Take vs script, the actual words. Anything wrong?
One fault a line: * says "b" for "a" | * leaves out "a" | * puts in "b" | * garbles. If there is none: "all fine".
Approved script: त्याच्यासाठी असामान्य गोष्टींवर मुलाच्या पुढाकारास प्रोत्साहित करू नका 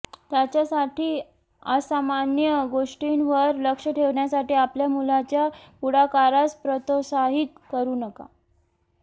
* puts in "लक्ष ठेवण्यासाठी आपल्या"